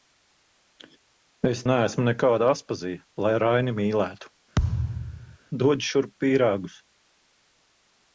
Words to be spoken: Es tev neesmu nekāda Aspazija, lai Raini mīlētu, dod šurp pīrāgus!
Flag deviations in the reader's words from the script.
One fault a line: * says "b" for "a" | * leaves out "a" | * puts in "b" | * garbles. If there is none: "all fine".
* leaves out "tev"